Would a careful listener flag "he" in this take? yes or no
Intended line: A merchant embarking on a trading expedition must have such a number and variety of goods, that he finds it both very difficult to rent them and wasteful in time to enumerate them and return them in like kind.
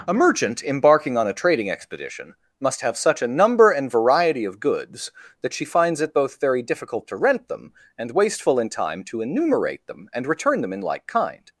yes